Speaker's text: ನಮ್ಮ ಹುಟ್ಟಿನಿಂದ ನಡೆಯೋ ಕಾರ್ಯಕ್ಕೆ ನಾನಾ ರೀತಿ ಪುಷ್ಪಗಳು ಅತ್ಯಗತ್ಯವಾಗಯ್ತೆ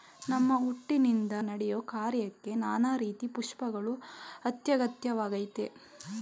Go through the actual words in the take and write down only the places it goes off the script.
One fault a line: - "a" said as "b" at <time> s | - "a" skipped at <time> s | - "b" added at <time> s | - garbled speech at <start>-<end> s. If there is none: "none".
none